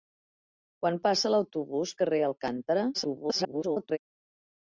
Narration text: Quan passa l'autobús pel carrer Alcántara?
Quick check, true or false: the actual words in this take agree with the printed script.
false